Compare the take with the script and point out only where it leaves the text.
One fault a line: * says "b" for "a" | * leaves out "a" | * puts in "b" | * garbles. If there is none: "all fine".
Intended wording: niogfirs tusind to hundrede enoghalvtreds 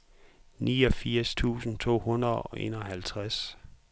* puts in "og"